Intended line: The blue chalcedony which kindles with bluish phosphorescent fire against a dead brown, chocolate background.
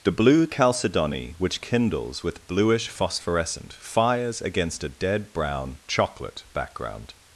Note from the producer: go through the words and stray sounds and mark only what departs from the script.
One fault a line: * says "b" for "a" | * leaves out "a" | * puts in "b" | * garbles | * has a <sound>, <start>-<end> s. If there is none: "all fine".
* says "fires" for "fire"